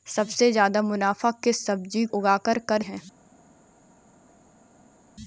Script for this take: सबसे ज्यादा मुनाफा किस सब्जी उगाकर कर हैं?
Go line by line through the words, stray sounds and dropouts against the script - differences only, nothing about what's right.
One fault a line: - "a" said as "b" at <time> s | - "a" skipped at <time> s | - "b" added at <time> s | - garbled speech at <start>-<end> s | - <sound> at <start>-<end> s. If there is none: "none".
none